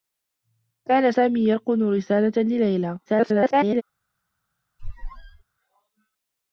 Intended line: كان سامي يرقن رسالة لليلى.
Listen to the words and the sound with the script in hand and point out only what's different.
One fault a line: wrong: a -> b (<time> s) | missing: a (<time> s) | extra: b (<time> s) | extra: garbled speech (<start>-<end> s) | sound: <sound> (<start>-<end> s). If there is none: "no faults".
extra: garbled speech (3.1-3.8 s)
sound: squeak (4.8-5.4 s)